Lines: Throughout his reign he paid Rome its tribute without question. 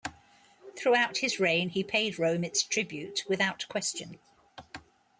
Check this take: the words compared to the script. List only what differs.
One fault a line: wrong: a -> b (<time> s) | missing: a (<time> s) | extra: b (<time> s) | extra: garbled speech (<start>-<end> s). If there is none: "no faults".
no faults